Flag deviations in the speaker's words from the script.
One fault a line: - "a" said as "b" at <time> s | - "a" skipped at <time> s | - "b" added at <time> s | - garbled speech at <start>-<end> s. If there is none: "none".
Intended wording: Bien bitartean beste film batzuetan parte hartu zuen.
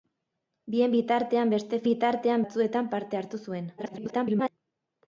- "film" said as "bitartean" at 1.9 s
- garbled speech at 3.8-4.5 s